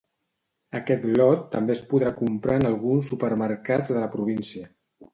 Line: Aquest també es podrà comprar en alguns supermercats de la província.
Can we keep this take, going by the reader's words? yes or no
no